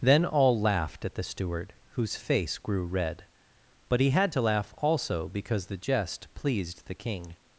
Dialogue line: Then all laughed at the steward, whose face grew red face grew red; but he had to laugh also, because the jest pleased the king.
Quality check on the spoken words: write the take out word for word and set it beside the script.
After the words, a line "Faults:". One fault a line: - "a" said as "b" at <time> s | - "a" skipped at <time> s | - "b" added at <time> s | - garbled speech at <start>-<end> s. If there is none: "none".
Then all laughed at the steward, whose face grew red; but he had to laugh also, because the jest pleased the king.
Faults:
- "face grew red" skipped at 3.2 s